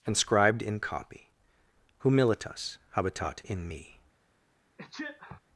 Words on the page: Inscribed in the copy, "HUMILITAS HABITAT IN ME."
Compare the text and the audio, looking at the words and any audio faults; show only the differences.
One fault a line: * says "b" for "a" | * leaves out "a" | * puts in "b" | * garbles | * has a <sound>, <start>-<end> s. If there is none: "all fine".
* leaves out "the"
* has a sneeze, 4.8-5.4 s